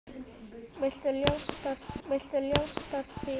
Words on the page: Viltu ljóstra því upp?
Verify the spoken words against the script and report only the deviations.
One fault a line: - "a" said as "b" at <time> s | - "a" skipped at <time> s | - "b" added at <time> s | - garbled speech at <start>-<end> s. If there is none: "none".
- "viltu ljóstra því" added at 2.1 s